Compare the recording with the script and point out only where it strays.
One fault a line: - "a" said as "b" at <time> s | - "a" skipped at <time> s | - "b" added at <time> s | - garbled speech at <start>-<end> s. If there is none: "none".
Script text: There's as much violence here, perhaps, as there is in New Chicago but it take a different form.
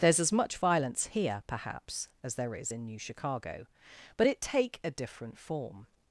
none